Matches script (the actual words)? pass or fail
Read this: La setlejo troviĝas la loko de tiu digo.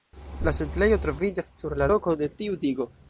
fail